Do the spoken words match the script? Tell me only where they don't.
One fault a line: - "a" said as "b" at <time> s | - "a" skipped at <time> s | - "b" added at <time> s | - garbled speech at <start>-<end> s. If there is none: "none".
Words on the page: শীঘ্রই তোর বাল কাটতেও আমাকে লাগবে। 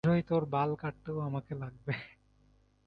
none